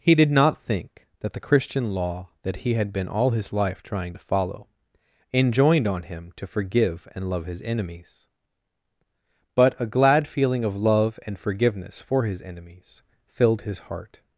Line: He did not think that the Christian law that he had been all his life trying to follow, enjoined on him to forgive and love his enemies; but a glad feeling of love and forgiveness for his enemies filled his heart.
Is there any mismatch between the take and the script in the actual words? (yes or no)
no